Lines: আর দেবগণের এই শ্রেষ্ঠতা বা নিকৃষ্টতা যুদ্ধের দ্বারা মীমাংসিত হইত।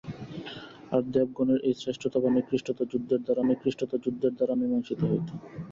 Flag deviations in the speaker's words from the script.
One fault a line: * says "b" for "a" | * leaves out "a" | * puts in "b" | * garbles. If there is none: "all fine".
* puts in "নিকৃষ্টতা যুদ্ধের দ্বারা"